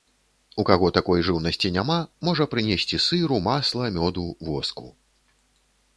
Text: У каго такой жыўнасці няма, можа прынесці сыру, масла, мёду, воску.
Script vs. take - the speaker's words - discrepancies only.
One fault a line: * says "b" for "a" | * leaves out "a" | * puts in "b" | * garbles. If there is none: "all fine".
all fine